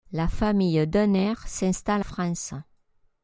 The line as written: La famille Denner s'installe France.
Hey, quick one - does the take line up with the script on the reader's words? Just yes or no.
yes